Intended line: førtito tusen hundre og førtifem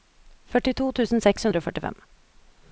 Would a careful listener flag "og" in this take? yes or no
no